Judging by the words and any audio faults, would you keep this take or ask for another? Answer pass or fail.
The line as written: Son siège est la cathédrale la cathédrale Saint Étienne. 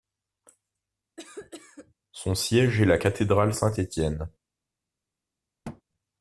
fail